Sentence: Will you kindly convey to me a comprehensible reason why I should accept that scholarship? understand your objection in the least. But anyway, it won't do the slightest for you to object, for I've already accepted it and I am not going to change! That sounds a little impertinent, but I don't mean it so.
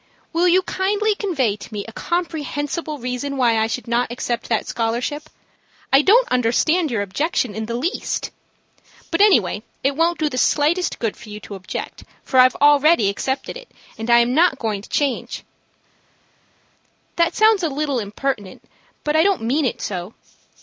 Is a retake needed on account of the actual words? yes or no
yes